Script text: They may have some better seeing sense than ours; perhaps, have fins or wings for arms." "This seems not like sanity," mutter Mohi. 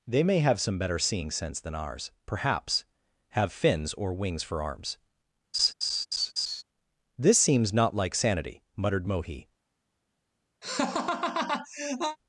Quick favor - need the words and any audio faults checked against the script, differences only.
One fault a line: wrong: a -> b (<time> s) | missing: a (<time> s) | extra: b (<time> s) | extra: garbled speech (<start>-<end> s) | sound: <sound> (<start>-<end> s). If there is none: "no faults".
sound: laugh (5.5-6.6 s)
wrong: mutter -> muttered (8.8 s)
sound: laugh (10.6-12.2 s)